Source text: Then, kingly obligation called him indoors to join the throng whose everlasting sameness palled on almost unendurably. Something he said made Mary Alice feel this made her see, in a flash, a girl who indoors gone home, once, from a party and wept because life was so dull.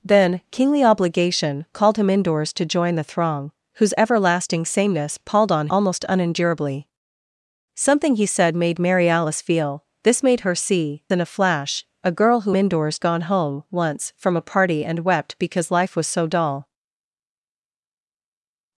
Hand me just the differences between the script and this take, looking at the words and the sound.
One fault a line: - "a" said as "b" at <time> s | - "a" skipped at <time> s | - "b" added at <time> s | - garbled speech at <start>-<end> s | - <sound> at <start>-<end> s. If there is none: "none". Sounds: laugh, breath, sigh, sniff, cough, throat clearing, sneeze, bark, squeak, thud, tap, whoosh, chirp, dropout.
none